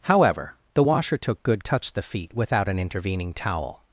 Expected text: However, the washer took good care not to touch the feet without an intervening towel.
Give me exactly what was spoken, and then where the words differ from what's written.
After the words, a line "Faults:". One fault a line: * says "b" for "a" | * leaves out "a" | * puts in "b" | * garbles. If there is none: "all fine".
However, the washer took good touch the feet without an intervening towel.
Faults:
* leaves out "care not to"